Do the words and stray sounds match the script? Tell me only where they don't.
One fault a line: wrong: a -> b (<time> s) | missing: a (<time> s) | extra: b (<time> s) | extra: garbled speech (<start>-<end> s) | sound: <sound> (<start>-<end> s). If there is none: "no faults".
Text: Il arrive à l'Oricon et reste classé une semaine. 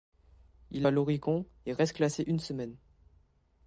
missing: arrive (0.9 s)